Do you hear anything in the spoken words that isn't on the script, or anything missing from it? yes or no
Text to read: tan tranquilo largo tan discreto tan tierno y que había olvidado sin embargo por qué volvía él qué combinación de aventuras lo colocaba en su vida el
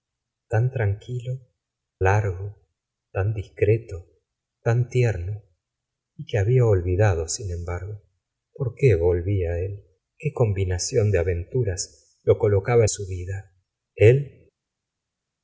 no